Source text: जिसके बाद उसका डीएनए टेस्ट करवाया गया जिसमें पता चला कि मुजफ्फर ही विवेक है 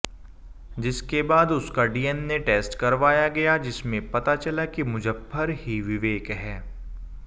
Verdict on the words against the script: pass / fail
pass